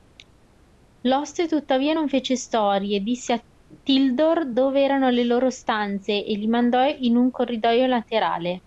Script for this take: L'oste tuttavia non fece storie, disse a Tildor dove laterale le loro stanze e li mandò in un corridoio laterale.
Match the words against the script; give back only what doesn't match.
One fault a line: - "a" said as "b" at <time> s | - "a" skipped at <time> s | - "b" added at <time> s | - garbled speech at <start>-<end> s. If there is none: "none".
- "laterale" said as "erano" at 4.8 s